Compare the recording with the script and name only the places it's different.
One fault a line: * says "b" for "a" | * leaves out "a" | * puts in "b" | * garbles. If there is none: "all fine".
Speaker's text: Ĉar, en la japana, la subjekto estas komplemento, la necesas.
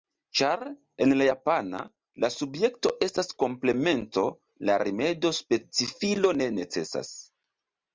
* puts in "rimedo specifilo ne"